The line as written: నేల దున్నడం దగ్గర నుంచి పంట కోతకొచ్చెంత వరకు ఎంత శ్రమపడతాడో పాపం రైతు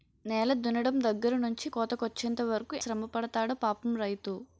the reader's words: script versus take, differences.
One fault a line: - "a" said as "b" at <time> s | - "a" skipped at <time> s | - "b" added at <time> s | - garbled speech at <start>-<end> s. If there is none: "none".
- "పంట" skipped at 1.7 s
- "ఎంత" skipped at 2.8 s